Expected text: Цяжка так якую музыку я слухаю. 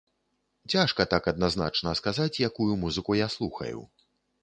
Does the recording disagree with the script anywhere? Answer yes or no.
yes